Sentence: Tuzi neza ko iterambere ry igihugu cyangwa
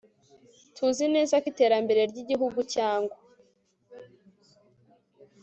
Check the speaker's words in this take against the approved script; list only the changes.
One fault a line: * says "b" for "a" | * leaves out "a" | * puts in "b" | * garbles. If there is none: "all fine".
all fine